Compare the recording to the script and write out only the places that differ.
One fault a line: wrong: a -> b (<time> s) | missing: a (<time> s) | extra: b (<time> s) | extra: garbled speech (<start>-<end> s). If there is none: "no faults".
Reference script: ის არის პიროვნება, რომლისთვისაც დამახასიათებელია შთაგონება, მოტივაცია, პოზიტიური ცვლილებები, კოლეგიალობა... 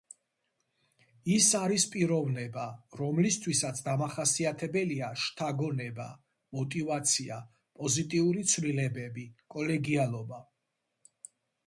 no faults